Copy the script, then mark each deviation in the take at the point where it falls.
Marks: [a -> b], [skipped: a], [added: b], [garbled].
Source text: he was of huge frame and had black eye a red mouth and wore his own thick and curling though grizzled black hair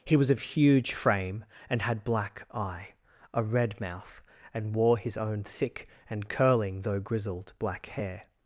he was of huge frame and had black eye a red mouth and wore his own thick and curling though grizzled black hair